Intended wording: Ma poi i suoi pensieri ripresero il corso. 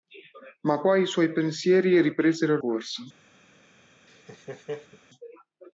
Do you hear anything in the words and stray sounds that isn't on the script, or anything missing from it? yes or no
yes